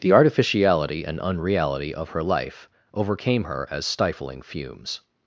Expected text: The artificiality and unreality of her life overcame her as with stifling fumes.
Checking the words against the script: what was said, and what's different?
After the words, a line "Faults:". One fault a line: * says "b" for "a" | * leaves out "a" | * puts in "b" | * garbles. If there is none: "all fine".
The artificiality and unreality of her life overcame her as stifling fumes.
Faults:
* leaves out "with"